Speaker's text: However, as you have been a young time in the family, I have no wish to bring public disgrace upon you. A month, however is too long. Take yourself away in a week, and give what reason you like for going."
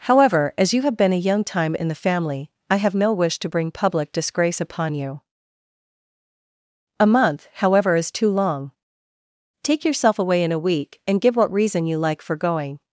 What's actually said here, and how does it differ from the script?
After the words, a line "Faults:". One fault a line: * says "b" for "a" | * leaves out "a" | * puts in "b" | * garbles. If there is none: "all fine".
However, as you have been a young time in the family, I have no wish to bring public disgrace upon you. A month, however is too long. Take yourself away in a week, and give what reason you like for going."
Faults:
all fine